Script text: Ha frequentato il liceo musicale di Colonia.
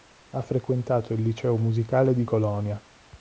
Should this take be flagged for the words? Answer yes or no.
no